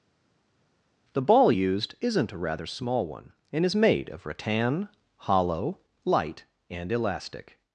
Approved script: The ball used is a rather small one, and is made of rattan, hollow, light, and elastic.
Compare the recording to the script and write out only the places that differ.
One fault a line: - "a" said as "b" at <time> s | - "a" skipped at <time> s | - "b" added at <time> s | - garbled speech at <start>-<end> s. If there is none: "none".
- "is" said as "isn't" at 2.0 s